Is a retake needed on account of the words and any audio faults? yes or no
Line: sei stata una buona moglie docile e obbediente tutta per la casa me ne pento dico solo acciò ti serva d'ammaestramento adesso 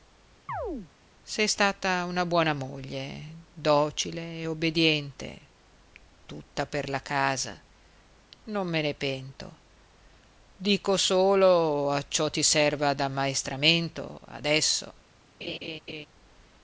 yes